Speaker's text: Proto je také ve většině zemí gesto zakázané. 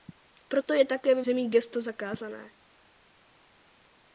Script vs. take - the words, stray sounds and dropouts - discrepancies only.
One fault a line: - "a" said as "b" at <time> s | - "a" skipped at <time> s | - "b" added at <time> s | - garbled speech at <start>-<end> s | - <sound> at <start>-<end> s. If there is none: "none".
- "většině" skipped at 1.2 s